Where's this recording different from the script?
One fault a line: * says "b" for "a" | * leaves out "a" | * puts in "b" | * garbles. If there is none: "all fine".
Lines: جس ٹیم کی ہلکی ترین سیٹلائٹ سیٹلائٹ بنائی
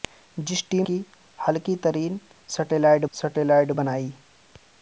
all fine